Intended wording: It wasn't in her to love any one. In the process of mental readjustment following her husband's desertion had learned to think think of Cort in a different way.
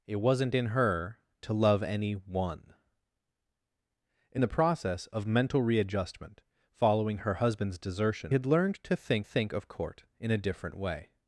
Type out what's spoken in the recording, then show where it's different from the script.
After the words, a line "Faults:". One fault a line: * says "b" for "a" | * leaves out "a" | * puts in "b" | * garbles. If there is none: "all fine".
It wasn't in her to love any one. In the process of mental readjustment following her husband's desertion had learned to think think of Cort in a different way.
Faults:
all fine